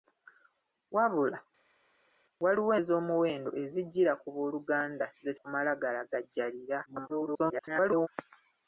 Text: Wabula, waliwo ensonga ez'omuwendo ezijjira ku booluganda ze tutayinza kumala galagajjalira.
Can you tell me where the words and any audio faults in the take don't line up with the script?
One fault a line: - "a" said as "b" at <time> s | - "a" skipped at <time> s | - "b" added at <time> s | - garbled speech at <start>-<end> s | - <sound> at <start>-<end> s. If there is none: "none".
- "ensonga" skipped at 2.7 s
- "tutayinza" skipped at 5.3 s
- garbled speech at 6.9-8.1 s